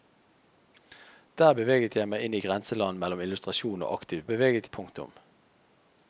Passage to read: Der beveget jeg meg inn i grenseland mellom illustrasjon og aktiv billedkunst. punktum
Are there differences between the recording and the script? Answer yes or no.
yes